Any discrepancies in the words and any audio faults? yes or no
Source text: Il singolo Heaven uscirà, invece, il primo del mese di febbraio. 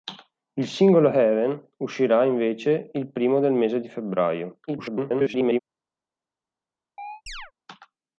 yes